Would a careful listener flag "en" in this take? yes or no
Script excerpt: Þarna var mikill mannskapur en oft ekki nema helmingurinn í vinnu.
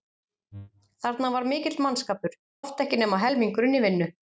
yes